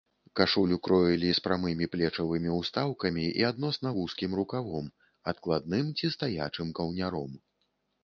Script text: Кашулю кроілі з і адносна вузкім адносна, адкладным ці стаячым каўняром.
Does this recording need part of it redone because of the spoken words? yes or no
yes